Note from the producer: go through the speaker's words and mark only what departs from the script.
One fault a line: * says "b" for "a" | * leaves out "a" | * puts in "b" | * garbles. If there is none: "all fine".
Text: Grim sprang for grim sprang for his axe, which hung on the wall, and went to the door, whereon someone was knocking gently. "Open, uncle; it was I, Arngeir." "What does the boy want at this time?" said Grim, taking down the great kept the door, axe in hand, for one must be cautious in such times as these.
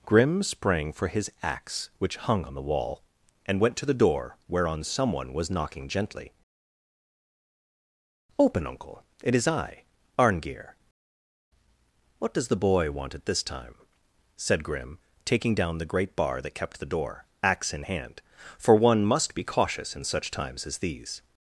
* leaves out "grim sprang for"
* says "is" for "was"
* puts in "bar that"